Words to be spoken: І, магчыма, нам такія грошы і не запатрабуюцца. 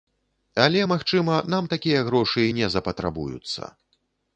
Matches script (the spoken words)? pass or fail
fail